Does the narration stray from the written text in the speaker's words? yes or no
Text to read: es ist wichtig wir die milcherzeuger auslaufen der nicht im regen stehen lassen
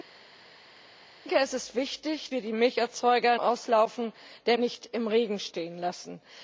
no